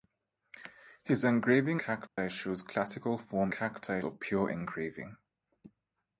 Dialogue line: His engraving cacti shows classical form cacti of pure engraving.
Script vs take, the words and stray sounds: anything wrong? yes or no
yes